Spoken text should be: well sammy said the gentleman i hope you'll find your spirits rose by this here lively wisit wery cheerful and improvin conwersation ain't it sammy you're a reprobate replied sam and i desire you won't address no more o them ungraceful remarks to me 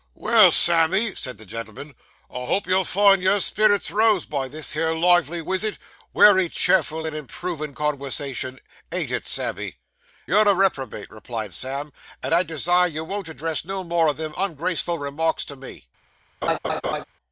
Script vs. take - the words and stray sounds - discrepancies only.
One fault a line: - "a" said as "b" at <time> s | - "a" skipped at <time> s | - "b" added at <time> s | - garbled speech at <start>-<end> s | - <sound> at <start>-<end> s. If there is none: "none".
- laugh at 16.4-17.0 s